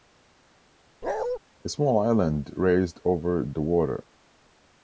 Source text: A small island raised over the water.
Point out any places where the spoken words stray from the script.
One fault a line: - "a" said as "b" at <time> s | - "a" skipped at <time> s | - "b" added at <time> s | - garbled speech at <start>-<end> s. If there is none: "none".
none